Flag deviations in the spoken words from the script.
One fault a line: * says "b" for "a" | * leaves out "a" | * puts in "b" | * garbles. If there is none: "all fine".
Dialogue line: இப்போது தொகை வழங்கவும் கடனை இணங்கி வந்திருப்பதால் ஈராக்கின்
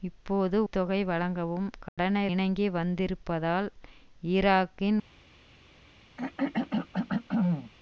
all fine